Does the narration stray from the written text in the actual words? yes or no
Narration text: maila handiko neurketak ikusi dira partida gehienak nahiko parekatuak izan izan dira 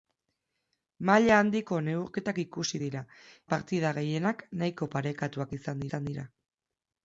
no